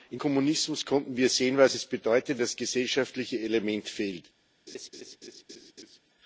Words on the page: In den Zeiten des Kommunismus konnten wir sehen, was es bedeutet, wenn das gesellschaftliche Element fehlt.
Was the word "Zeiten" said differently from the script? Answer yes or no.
yes